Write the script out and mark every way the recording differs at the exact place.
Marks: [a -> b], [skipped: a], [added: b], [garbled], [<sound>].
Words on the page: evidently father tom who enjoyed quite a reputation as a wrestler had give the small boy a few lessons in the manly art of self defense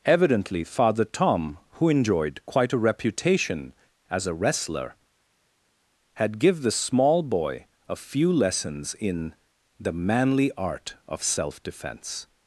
evidently father tom who enjoyed quite a reputation as a wrestler had give the small boy a few lessons in the manly art of self defense